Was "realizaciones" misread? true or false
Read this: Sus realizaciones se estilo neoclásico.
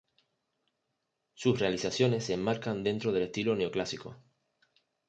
false